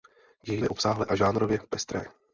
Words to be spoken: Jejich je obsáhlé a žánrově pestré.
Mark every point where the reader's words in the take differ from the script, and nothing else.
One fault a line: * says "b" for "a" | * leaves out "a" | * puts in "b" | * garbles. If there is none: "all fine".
all fine